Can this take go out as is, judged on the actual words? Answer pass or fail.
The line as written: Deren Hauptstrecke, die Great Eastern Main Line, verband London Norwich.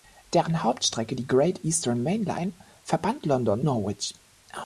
pass